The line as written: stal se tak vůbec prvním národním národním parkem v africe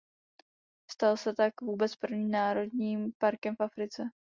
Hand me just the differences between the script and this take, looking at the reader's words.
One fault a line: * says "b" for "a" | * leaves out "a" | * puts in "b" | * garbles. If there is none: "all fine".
* leaves out "národním"